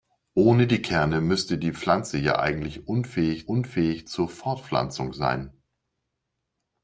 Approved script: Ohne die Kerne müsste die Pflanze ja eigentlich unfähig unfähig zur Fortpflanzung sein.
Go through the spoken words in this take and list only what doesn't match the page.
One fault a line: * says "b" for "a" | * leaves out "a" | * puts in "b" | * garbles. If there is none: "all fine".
all fine